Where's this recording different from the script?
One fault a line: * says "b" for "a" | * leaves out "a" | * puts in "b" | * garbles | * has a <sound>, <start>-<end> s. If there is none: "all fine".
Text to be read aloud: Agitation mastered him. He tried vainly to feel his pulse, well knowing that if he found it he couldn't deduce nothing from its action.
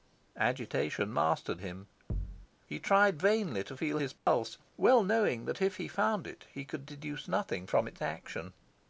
* has a thud, 2.1-2.5 s
* has a dropout, 4.2-4.3 s
* says "could" for "couldn't"